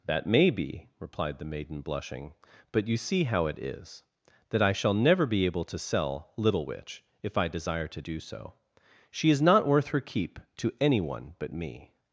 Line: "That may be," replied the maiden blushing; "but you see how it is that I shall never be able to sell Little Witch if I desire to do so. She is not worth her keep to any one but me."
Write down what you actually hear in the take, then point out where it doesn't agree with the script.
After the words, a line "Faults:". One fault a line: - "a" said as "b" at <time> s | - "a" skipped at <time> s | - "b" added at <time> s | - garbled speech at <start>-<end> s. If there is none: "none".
"That may be," replied the maiden blushing; "but you see how it is that I shall never be able to sell Little Witch if I desire to do so. She is not worth her keep to any one but me."
Faults:
none